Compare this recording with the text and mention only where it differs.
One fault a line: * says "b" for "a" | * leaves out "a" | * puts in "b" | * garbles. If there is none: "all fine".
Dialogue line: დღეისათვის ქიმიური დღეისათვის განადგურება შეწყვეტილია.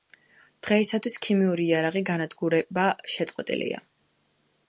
* says "იარაღი" for "დღეისათვის"